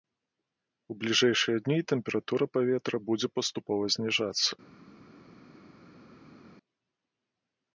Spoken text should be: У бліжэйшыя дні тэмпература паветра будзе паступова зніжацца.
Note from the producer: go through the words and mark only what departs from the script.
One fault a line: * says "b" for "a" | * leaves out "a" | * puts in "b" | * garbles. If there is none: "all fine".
all fine